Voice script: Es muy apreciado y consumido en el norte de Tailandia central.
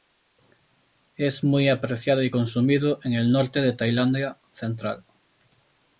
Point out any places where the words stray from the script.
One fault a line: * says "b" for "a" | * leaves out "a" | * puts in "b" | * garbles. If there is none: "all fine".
all fine